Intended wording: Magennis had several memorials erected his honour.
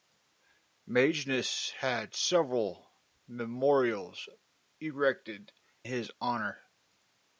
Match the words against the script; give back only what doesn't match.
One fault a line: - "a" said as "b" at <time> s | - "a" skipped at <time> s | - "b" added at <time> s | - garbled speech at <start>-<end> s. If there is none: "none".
none